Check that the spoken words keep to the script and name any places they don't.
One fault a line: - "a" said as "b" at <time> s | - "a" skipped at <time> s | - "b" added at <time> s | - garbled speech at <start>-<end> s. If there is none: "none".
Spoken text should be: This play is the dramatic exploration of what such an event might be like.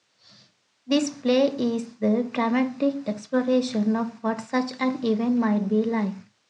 none